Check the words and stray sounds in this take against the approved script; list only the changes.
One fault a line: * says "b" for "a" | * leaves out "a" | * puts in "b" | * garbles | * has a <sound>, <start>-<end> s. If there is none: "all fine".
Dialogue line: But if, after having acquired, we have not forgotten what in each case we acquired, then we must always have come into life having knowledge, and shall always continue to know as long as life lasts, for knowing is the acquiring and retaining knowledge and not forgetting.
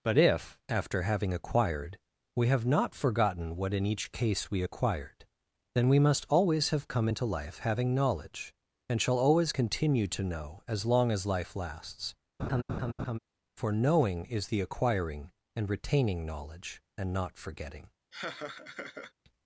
* has a laugh, 12.4-13.2 s
* has a laugh, 18.1-19.1 s